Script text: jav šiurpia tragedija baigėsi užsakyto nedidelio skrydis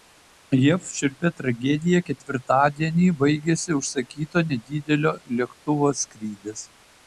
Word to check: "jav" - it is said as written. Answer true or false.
true